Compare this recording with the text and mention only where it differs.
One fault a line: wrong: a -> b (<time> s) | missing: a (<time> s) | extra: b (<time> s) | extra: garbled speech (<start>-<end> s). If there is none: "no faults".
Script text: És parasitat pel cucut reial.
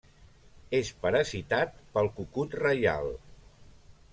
no faults